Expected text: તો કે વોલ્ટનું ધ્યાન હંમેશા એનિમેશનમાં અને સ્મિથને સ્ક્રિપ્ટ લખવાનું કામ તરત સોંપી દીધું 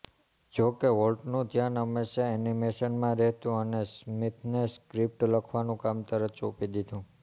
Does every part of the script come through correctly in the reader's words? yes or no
no